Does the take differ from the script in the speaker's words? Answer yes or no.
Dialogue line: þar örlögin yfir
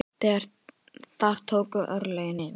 yes